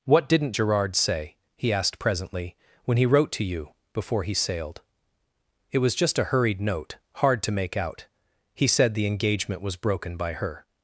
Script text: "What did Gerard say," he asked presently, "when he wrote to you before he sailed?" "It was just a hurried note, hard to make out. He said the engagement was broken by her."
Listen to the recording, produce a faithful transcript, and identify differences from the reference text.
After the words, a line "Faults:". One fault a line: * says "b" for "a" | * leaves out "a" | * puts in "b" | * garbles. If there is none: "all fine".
"What didn't Gerard say," he asked presently, "when he wrote to you before he sailed?" "It was just a hurried note, hard to make out. He said the engagement was broken by her."
Faults:
* says "didn't" for "did"